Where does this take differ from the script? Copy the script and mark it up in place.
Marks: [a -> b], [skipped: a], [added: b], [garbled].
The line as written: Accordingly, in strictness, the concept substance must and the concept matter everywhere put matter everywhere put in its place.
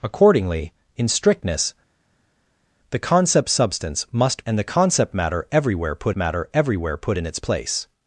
Accordingly, in strictness, the concept substance must and the concept matter everywhere put matter everywhere put in its place.